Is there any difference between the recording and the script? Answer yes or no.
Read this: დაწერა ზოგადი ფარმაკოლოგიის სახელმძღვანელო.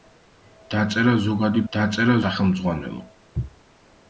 yes